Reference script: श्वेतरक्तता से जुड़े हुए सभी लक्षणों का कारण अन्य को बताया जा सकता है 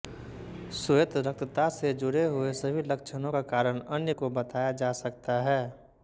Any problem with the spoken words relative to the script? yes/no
no